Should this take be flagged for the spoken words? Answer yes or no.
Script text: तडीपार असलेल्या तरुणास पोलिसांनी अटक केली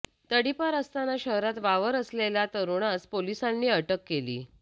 yes